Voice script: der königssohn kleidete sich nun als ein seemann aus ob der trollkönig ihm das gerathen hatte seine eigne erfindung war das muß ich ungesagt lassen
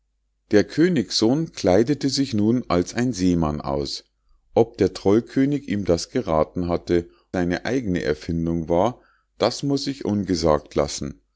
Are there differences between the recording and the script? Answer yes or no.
no